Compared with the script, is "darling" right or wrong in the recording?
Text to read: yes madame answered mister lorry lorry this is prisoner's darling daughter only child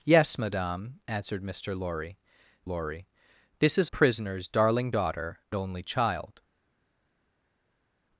right